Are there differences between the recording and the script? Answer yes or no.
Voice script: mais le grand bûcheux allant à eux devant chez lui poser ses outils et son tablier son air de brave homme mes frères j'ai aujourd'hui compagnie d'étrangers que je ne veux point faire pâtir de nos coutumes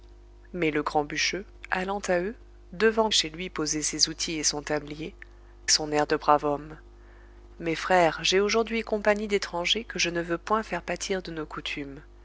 no